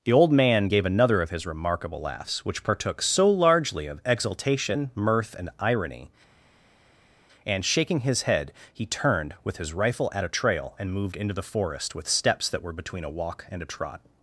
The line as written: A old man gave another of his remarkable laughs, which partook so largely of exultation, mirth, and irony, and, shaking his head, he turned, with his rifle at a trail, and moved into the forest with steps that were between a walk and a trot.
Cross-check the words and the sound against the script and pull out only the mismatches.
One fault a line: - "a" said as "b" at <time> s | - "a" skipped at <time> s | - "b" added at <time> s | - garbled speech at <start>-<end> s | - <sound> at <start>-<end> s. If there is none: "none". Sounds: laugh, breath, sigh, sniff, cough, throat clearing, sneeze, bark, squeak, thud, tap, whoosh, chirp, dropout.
- "A" said as "The" at 0.0 s